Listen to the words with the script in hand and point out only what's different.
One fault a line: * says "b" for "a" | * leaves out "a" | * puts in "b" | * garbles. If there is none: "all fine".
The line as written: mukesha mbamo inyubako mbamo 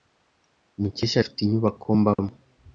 * says "afite" for "mbamo"